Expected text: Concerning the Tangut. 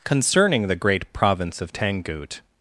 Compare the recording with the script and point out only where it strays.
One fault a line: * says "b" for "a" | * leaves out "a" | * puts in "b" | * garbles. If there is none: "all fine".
* puts in "Great Province of"